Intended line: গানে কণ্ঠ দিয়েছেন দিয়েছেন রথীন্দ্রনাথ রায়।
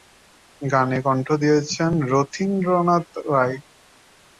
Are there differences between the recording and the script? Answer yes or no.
yes